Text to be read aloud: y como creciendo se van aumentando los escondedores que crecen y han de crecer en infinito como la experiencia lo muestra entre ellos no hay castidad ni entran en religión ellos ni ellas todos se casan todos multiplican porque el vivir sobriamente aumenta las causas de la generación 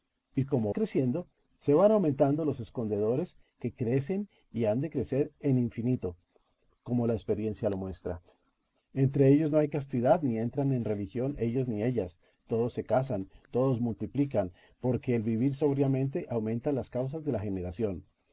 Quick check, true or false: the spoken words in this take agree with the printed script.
true